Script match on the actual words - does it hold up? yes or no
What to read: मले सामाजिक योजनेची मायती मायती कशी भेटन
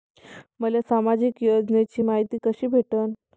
no